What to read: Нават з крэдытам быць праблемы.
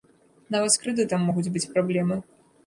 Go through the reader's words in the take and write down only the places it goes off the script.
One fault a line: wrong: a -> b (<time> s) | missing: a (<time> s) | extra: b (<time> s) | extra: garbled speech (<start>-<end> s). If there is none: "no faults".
extra: могуць (1.3 s)